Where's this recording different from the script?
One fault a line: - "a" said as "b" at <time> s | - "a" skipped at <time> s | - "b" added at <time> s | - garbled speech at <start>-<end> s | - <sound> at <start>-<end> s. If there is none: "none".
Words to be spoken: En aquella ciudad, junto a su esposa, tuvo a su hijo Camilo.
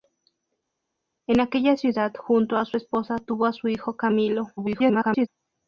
- garbled speech at 4.6-5.3 s